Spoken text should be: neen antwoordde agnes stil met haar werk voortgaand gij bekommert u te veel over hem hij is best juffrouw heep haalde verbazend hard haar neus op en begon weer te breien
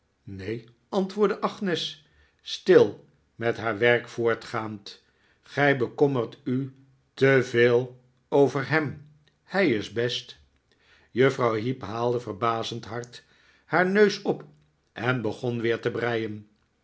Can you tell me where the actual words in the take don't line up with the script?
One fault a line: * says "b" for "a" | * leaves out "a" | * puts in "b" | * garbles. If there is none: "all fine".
all fine